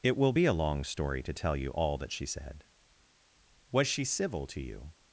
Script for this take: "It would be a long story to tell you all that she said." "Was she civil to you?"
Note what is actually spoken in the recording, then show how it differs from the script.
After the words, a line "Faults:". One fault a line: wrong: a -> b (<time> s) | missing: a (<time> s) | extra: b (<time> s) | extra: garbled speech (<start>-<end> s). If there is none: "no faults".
"It will be a long story to tell you all that she said." "Was she civil to you?"
Faults:
wrong: would -> will (0.2 s)